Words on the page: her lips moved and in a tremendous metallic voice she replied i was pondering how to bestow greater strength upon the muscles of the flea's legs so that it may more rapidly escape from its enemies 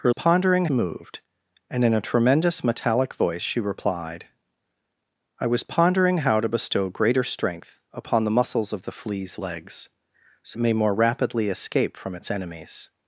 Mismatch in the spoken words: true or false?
true